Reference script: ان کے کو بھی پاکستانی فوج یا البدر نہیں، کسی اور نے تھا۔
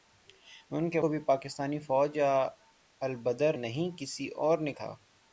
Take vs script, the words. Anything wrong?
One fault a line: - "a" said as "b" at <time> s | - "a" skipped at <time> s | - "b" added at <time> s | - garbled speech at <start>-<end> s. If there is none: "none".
none